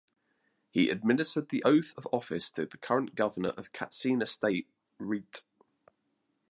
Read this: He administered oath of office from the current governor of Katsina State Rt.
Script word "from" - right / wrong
wrong